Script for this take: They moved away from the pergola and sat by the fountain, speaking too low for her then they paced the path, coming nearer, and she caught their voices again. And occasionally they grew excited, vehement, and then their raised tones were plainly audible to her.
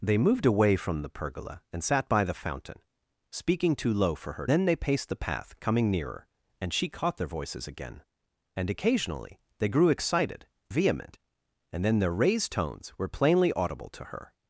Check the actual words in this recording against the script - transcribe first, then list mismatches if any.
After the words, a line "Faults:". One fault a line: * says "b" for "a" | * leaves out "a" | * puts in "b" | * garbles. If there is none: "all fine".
They moved away from the pergola and sat by the fountain, speaking too low for her then they paced the path, coming nearer, and she caught their voices again. And occasionally they grew excited, vehement, and then their raised tones were plainly audible to her.
Faults:
all fine